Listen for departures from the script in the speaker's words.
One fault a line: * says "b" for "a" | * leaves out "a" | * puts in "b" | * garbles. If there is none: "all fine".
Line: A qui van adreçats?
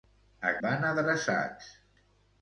* leaves out "qui"